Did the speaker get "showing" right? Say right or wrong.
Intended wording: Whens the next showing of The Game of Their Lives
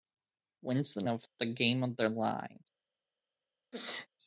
wrong